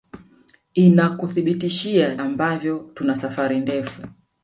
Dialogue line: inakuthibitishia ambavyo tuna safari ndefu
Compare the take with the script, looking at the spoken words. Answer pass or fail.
pass